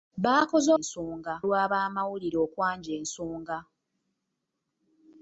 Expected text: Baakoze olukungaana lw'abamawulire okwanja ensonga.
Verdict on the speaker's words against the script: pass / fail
fail